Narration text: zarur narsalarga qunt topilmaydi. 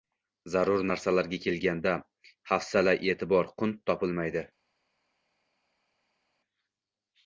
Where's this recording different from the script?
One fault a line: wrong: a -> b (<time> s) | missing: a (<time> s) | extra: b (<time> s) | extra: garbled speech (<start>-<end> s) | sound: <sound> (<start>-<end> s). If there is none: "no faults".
extra: kelganda hafsala e'tibor (1.5 s)